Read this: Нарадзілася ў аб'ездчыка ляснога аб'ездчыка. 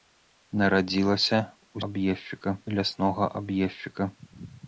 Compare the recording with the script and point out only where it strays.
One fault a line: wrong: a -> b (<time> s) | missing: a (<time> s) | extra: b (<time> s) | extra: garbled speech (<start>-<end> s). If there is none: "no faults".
no faults